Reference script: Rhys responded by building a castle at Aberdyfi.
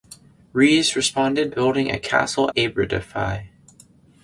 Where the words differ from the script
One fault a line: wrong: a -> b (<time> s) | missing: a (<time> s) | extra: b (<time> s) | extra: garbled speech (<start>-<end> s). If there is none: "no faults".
missing: by (1.5 s)
missing: at (2.5 s)